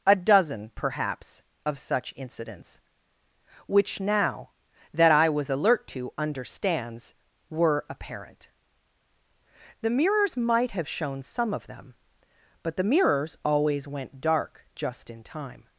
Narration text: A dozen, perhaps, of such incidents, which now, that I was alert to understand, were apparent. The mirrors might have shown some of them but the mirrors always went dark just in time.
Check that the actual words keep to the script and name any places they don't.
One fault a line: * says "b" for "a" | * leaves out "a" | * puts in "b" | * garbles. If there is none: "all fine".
* says "understands" for "understand"